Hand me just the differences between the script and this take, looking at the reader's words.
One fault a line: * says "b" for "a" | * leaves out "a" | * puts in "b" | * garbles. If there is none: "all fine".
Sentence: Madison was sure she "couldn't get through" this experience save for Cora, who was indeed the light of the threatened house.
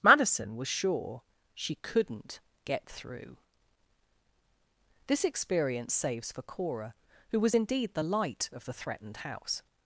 * says "saves" for "save"